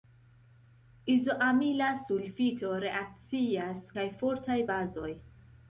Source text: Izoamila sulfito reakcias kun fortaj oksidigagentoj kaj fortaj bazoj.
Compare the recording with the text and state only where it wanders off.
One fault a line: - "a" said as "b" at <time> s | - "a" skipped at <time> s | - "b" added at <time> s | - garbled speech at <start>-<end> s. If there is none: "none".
- "kun fortaj oksidigagentoj" skipped at 3.9 s